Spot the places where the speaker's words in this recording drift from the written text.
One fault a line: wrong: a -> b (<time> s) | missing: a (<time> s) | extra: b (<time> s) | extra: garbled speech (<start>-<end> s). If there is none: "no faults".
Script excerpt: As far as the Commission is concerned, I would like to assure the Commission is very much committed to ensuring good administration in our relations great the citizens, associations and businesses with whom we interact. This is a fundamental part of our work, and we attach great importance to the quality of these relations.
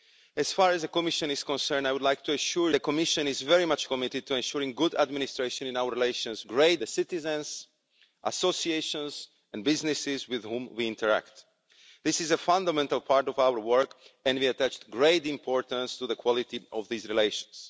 no faults